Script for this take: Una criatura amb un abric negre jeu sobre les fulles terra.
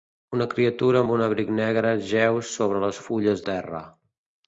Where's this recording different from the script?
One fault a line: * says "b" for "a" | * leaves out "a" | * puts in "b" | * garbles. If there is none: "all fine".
all fine